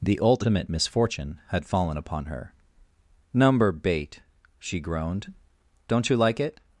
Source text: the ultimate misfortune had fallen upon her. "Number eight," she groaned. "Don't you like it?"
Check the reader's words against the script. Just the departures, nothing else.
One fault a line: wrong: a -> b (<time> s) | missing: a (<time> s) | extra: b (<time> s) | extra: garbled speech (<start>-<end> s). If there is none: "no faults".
wrong: eight -> bait (3.7 s)